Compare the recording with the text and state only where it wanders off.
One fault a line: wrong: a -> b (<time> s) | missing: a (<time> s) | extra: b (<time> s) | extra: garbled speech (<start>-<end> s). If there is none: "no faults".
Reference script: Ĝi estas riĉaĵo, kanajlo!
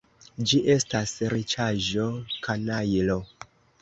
no faults